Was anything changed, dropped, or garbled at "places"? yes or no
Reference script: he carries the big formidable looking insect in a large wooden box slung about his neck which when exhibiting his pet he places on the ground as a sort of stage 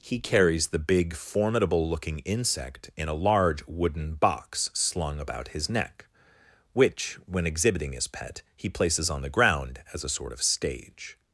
no